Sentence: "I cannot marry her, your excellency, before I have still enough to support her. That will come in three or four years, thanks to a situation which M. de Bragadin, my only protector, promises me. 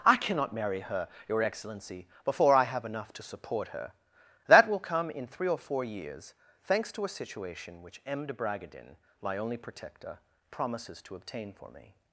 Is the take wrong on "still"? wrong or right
wrong